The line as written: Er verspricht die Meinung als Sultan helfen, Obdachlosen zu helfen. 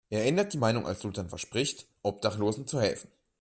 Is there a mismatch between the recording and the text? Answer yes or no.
yes